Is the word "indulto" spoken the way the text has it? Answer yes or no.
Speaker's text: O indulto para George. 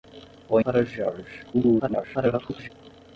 no